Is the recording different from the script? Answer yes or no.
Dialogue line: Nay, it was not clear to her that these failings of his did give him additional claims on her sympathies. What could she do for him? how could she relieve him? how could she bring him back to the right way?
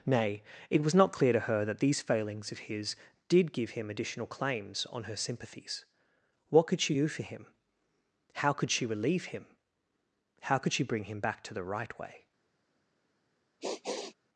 no